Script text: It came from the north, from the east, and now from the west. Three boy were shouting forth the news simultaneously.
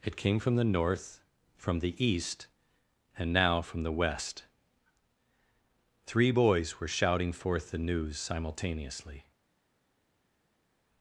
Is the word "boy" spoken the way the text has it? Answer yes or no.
no